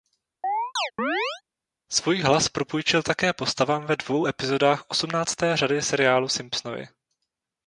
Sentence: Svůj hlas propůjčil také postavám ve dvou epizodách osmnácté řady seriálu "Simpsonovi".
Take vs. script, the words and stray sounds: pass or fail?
fail